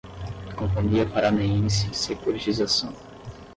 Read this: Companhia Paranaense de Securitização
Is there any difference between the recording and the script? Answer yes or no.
yes